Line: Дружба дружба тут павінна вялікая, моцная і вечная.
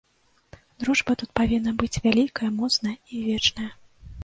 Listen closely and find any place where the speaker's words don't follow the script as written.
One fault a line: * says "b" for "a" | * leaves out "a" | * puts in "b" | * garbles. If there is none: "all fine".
* leaves out "дружба"
* puts in "быць"